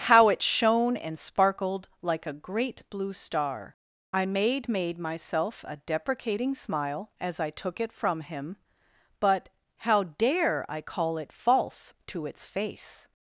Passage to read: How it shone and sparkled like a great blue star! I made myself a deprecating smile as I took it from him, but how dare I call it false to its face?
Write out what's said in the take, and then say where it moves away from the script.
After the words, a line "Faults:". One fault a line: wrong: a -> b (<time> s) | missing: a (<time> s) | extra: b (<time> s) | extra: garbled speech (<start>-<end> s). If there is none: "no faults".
How it shone and sparkled like a great blue star! I made made myself a deprecating smile as I took it from him, but how dare I call it false to its face?
Faults:
extra: made (4.7 s)